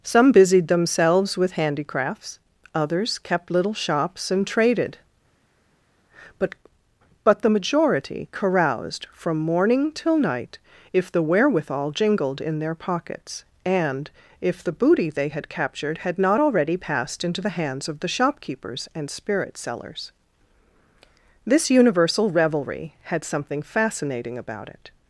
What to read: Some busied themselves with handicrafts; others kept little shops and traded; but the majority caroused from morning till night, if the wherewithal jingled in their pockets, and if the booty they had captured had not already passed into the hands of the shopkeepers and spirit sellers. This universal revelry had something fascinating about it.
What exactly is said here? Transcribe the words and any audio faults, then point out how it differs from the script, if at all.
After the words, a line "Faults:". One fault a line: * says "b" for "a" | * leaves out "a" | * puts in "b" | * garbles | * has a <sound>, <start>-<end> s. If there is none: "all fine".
Some busied themselves with handicrafts; others kept little shops and traded; but but the majority caroused from morning till night, if the wherewithal jingled in their pockets, and if the booty they had captured had not already passed into the hands of the shopkeepers and spirit sellers. This universal revelry had something fascinating about it.
Faults:
* puts in "but"